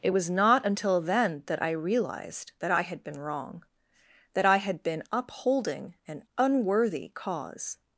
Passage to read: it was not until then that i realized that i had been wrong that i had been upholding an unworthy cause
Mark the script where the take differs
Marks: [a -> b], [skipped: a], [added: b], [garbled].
it was not until then that i realized that i had been wrong that i had been upholding an unworthy cause